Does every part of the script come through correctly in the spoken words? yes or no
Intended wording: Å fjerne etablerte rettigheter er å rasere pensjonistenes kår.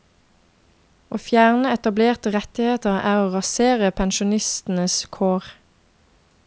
yes